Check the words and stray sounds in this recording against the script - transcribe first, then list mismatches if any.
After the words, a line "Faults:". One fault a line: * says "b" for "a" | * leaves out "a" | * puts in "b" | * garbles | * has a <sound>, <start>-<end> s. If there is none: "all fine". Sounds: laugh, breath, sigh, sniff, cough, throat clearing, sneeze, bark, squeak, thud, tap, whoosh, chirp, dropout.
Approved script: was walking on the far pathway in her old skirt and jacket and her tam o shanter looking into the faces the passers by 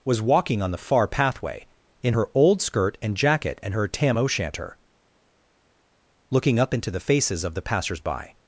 was walking on the far pathway in her old skirt and jacket and her tam o shanter looking up into the faces of the passers by
Faults:
* puts in "up"
* puts in "of"